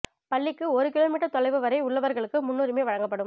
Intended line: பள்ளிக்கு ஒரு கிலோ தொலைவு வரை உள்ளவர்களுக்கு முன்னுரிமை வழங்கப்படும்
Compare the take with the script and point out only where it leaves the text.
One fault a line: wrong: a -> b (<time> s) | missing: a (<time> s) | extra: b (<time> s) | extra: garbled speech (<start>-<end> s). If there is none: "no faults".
extra: மீட்டர் (1.1 s)